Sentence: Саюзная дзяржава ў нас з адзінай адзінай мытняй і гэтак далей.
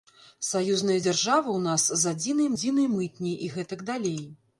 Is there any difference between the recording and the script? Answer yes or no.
no